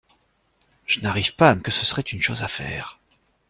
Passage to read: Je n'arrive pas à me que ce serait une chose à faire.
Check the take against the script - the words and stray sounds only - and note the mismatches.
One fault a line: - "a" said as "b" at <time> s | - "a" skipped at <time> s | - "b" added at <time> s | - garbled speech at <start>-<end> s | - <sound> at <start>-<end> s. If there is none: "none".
none